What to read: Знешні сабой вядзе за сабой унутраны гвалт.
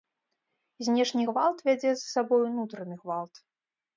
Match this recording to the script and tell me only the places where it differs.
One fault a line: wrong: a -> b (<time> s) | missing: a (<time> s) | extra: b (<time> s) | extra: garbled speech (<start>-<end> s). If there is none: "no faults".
wrong: сабой -> гвалт (1.3 s)